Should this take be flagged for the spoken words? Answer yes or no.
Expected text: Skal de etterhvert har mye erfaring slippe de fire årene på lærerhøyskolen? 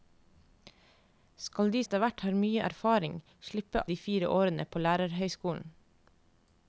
no